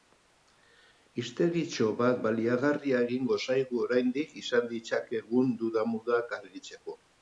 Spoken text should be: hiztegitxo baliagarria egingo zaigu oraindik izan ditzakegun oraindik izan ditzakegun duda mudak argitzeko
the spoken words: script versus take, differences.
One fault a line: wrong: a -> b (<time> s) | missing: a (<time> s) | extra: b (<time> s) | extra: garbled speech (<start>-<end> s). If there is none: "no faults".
extra: bat (2.0 s)
missing: oraindik izan ditzakegun (5.6 s)